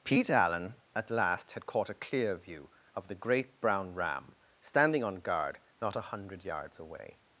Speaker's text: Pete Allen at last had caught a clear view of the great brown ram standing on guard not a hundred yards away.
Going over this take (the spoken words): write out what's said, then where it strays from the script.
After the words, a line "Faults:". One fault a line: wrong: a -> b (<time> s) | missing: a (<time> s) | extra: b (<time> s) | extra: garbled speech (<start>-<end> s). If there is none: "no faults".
Pete Allen at last had caught a clear view of the great brown ram standing on guard not a hundred yards away.
Faults:
no faults